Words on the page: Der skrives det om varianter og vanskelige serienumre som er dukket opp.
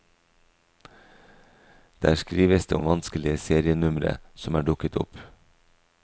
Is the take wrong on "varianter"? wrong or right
wrong